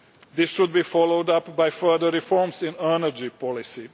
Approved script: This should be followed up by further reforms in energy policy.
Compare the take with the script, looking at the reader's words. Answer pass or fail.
pass